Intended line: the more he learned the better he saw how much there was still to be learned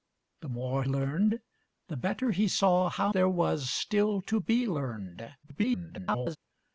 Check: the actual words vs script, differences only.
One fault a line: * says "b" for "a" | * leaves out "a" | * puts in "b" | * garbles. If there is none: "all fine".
* leaves out "he"
* leaves out "much"
* garbles